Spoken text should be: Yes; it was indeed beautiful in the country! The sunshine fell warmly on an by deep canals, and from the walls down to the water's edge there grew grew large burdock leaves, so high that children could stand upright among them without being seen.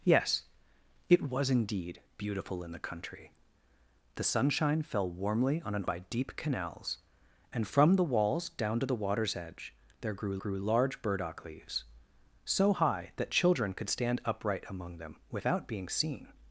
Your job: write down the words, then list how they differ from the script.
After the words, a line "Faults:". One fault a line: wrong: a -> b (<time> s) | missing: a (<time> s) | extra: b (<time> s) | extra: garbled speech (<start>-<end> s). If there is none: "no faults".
Yes; it was indeed beautiful in the country! The sunshine fell warmly on an by deep canals, and from the walls down to the water's edge there grew grew large burdock leaves, so high that children could stand upright among them without being seen.
Faults:
no faults